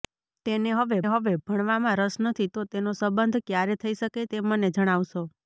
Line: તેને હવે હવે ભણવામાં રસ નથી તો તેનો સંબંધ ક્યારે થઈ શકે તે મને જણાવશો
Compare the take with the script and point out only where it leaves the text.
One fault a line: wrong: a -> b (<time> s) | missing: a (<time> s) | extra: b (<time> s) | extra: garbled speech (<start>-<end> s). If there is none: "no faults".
no faults